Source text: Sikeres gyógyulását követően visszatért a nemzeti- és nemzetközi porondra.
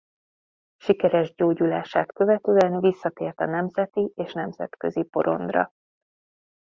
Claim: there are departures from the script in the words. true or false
false